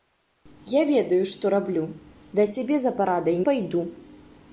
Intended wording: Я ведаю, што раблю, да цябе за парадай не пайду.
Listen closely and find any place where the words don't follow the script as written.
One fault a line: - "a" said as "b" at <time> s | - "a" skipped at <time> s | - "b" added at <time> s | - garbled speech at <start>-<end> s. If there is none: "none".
- "не" skipped at 3.4 s